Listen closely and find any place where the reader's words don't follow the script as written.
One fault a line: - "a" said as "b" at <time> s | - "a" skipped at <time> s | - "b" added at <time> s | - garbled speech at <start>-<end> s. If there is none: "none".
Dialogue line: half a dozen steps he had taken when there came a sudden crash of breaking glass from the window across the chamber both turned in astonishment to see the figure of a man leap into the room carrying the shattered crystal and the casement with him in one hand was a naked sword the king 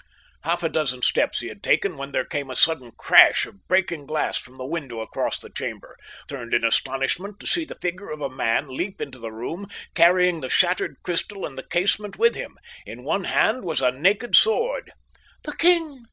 - "both" skipped at 6.0 s